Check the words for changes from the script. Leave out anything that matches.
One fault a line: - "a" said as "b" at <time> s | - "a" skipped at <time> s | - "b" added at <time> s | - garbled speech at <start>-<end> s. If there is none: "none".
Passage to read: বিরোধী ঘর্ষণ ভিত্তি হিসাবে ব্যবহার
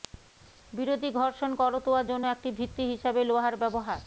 - "করতোয়া জন্য একটি" added at 1.6 s
- "লোহার" added at 3.2 s